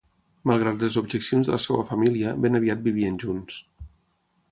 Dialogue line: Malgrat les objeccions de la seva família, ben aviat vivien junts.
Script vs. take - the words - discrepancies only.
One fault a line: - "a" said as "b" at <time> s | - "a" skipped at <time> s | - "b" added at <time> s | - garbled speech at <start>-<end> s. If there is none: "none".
none